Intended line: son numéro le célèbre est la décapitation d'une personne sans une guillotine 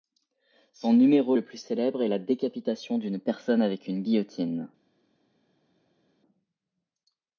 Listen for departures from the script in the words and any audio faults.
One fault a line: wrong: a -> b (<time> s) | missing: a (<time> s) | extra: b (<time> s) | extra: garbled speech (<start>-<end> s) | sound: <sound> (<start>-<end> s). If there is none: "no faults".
extra: plus (1.4 s)
wrong: sans -> avec (3.6 s)